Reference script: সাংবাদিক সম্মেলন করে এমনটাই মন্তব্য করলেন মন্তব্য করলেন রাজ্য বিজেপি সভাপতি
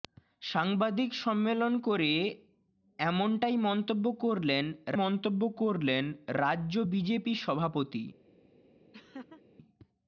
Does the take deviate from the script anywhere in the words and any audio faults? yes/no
yes